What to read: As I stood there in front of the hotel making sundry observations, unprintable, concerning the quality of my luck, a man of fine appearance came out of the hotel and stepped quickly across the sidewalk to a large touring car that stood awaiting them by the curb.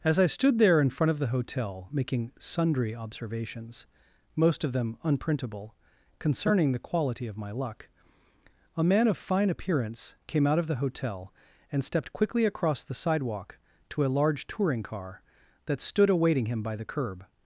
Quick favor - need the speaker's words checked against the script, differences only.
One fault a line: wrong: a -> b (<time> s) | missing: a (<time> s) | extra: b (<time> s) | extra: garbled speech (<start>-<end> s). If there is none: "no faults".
extra: most of them (4.3 s)
wrong: them -> him (16.5 s)